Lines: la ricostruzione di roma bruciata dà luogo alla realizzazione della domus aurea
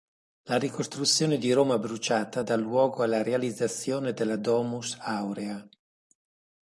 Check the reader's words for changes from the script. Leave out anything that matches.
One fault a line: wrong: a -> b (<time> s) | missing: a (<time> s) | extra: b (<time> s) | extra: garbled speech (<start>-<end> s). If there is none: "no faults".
no faults